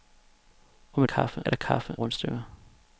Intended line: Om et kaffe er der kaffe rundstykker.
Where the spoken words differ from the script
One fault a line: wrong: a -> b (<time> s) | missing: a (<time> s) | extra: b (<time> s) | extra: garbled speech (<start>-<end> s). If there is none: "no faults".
no faults